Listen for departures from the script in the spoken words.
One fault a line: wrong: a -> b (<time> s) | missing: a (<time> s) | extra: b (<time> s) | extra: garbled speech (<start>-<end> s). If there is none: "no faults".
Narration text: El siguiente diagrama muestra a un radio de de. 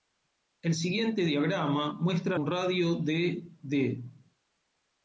no faults